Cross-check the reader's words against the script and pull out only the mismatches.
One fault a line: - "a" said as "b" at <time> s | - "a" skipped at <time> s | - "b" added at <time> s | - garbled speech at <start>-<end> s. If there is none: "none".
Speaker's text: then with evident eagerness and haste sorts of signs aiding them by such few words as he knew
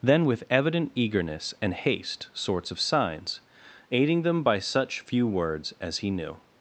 none